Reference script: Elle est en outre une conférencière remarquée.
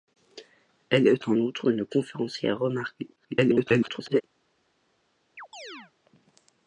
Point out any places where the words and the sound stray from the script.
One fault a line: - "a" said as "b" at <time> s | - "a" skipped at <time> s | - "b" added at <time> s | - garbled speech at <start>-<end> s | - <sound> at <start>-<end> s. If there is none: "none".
- garbled speech at 3.2-4.2 s
- chirp at 5.4-5.9 s